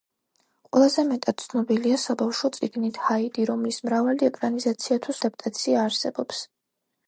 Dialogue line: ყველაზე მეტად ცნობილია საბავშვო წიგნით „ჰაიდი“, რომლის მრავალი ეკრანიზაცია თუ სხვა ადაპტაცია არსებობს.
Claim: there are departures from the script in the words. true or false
true